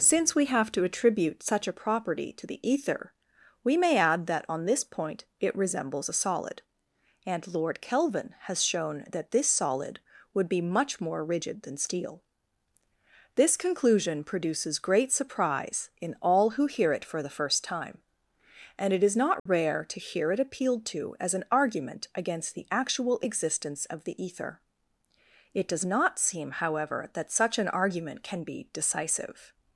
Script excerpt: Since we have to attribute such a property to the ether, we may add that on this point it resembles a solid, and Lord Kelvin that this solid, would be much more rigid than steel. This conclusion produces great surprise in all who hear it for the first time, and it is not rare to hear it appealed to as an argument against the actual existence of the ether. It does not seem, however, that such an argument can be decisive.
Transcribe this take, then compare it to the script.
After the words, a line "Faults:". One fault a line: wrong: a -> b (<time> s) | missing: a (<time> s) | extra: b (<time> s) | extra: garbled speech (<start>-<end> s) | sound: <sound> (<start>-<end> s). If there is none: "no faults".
Since we have to attribute such a property to the ether, we may add that on this point it resembles a solid, and Lord Kelvin has shown that this solid, would be much more rigid than steel. This conclusion produces great surprise in all who hear it for the first time, and it is not rare to hear it appealed to as an argument against the actual existence of the ether. It does not seem, however, that such an argument can be decisive.
Faults:
extra: has shown (8.4 s)
sound: dropout (19.4-19.5 s)